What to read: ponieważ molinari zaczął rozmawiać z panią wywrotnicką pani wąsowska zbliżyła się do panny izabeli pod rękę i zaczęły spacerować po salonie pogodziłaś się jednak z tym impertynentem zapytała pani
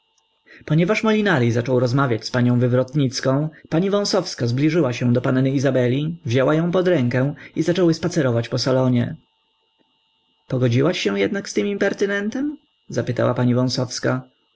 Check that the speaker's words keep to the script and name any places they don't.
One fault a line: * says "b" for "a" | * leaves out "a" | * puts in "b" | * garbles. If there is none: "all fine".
* puts in "wzięła ją"